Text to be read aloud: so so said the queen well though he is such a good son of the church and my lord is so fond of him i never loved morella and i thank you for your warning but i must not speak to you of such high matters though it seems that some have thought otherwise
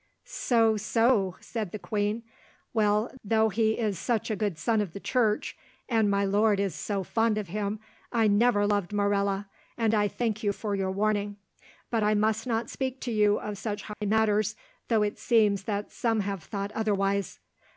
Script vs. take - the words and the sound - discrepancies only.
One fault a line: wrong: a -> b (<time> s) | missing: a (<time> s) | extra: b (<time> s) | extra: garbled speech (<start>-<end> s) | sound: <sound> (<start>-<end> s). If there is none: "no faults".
sound: dropout (13.9-14.0 s)